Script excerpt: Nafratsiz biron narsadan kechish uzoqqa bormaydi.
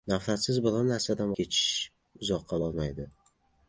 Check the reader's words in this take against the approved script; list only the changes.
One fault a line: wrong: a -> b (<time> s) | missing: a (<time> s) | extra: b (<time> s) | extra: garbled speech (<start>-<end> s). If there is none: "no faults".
no faults